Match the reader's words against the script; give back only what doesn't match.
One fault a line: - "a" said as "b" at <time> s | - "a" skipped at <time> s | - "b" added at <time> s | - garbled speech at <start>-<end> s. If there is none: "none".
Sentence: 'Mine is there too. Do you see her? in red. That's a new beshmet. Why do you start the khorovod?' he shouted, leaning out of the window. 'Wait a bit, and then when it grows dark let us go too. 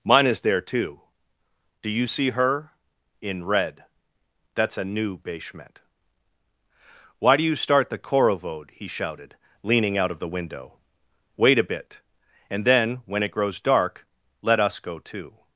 none